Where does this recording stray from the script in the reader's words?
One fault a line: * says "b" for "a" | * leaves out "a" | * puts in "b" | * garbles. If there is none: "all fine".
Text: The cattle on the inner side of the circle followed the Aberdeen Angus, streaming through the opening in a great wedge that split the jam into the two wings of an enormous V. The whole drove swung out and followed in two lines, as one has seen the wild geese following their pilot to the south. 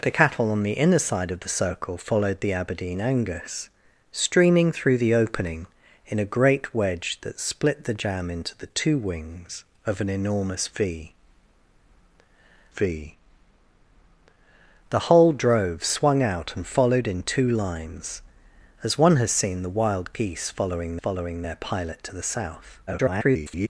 * puts in "V"
* puts in "following"
* garbles